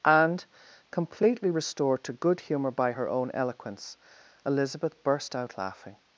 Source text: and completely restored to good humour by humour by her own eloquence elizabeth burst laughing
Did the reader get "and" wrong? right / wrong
right